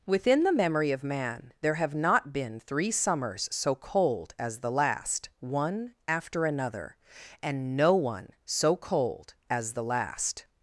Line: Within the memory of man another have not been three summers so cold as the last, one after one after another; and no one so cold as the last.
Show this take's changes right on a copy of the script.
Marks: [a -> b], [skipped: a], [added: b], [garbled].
Within the memory of man [another -> there] have not been three summers so cold as the last, one after [skipped: one after] another; and no one so cold as the last.